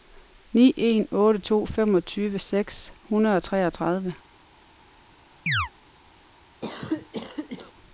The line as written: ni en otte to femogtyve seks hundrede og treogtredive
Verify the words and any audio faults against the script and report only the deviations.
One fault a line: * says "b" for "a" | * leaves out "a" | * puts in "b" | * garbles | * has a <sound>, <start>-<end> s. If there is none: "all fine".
* has a chirp, 5.5-5.7 s
* has a cough, 6.6-7.7 s